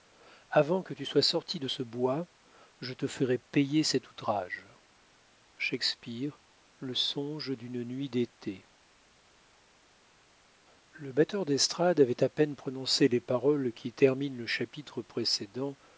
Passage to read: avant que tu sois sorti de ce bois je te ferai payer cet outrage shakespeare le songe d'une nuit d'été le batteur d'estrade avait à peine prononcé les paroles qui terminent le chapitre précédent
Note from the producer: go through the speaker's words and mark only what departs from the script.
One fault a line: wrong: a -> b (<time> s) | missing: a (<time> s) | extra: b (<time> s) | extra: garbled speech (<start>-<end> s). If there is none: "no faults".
no faults